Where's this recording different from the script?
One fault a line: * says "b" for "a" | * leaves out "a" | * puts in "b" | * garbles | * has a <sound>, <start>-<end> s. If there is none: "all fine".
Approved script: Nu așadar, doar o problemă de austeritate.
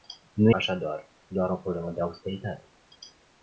all fine